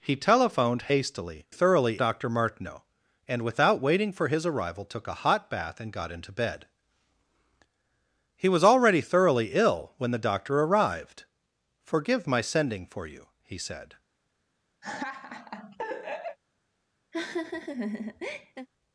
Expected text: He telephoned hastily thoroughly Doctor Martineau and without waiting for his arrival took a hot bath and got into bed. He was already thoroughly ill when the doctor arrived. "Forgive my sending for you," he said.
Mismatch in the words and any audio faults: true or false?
true